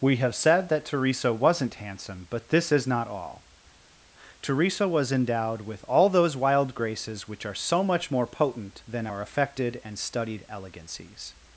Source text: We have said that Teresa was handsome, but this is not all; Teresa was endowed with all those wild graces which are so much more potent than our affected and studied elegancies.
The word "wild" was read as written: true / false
true